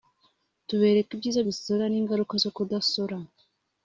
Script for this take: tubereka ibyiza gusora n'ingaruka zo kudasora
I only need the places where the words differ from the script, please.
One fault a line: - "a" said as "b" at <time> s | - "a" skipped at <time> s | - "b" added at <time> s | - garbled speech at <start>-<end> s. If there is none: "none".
none